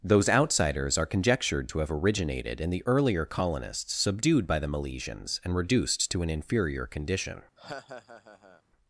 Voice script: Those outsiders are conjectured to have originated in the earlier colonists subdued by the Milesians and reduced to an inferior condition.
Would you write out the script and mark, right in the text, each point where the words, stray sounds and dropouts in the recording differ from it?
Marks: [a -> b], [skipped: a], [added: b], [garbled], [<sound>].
Those outsiders are conjectured to have originated in the earlier colonists subdued by the Milesians and reduced to an inferior condition. [laugh]